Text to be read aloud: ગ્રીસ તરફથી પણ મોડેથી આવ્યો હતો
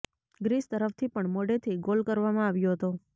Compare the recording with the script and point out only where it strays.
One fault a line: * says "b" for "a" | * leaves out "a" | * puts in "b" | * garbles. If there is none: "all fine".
* puts in "ગોલ કરવામાં"